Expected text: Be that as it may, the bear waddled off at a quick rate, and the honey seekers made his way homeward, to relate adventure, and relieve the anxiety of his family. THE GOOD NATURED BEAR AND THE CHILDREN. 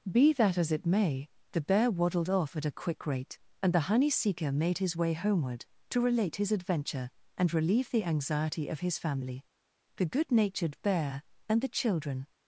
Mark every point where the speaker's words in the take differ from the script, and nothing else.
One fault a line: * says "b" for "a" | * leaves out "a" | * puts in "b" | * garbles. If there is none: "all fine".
* says "seeker" for "seekers"
* puts in "his"